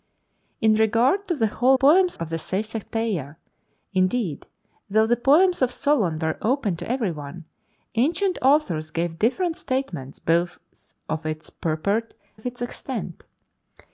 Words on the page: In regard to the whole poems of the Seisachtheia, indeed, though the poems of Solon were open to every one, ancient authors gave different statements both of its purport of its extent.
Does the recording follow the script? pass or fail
pass